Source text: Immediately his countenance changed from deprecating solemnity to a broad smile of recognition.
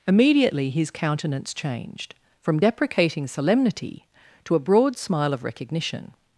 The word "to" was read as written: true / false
true